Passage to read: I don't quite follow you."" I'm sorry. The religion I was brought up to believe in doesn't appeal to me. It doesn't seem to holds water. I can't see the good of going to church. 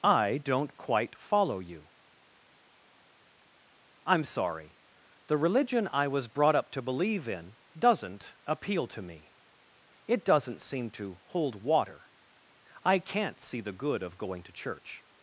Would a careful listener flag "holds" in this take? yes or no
yes